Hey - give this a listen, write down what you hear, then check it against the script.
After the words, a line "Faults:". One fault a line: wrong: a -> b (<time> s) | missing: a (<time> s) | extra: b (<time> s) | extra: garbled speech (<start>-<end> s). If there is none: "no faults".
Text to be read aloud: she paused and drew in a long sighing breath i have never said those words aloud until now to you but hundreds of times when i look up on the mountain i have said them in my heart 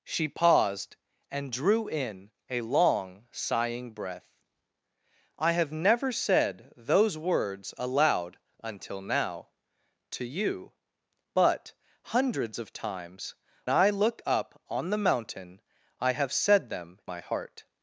she paused and drew in a long sighing breath i have never said those words aloud until now to you but hundreds of times i look up on the mountain i have said them my heart
Faults:
missing: when (13.3 s)
missing: in (17.0 s)